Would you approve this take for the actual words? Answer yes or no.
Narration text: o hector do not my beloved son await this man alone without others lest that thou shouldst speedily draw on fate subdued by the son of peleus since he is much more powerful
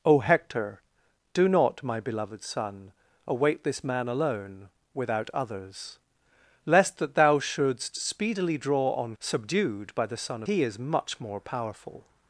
no